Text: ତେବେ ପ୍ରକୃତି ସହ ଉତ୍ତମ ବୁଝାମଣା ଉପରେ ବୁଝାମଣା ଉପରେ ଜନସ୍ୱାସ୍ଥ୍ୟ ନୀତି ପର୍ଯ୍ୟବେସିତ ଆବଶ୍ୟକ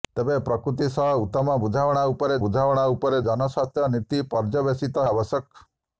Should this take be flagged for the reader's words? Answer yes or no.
no